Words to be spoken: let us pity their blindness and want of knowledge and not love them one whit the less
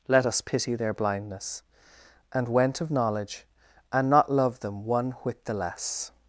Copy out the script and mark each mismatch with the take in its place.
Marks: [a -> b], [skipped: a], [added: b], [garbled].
let us pity their blindness and [want -> went] of knowledge and not love them one whit the less